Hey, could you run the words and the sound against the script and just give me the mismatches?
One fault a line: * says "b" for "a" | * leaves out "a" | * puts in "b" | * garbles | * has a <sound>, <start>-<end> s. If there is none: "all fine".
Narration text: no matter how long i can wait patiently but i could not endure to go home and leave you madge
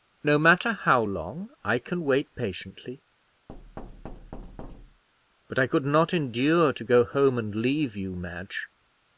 * has a thud, 3.5-5.0 s